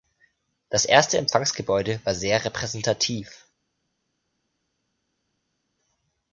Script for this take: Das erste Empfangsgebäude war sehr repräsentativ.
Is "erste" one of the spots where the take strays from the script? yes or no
no